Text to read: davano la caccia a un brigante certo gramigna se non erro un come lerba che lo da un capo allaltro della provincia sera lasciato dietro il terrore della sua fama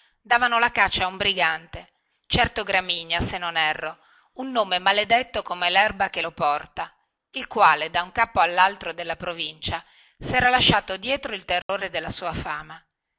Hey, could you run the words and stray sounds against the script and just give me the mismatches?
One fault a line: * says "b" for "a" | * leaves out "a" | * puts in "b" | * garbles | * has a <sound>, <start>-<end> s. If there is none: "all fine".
* puts in "nome maledetto"
* puts in "porta il quale"
* has a dropout, 11.6-11.7 s